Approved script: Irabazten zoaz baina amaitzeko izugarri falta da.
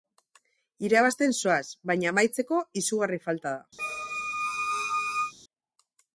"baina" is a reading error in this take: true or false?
false